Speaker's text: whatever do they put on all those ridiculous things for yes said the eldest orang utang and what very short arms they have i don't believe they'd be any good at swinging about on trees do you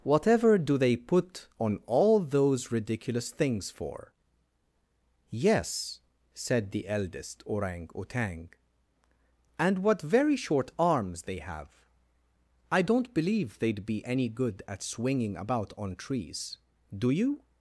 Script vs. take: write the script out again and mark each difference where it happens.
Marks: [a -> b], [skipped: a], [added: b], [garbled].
whatever do they put on all those ridiculous things for yes said the eldest orang utang and what very short arms they have i don't believe they'd be any good at swinging about on trees do you